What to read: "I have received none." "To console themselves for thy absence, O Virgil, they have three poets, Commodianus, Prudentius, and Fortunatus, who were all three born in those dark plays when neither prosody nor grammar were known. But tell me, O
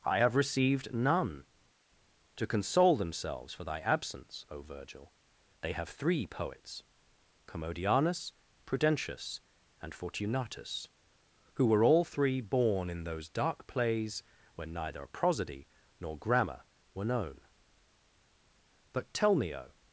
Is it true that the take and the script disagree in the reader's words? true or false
false